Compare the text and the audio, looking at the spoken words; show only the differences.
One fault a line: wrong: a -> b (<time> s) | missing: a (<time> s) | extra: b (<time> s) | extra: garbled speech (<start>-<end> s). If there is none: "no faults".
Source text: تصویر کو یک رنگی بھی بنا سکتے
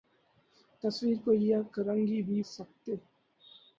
missing: بنا (2.4 s)